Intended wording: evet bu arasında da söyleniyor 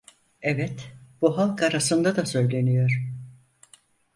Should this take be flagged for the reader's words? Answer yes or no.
yes